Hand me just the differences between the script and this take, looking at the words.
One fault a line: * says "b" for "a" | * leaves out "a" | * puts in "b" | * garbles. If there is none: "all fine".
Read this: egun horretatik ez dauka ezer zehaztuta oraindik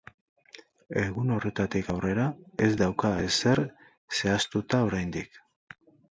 * puts in "aurrera"